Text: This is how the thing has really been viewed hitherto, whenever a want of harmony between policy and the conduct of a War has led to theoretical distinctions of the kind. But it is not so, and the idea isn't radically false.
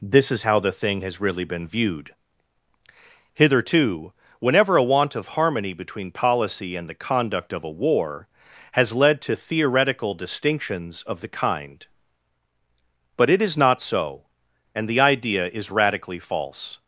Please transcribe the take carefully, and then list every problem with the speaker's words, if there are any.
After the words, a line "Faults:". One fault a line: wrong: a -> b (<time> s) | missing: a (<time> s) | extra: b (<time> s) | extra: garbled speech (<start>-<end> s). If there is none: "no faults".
This is how the thing has really been viewed hitherto, whenever a want of harmony between policy and the conduct of a War has led to theoretical distinctions of the kind. But it is not so, and the idea is radically false.
Faults:
wrong: isn't -> is (15.5 s)